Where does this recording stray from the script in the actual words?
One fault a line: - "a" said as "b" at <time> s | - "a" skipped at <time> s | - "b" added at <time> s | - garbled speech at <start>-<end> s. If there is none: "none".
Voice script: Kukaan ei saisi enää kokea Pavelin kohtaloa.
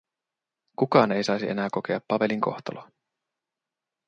none